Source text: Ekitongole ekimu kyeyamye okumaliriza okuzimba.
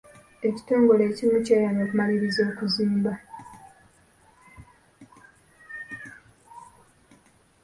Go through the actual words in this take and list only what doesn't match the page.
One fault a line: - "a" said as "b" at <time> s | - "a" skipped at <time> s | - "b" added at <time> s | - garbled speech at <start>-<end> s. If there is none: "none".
none